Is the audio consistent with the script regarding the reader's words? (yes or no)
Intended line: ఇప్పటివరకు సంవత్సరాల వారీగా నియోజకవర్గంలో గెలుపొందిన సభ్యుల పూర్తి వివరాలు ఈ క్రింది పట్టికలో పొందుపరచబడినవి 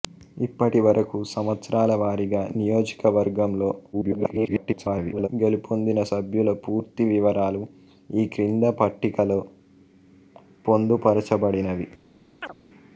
no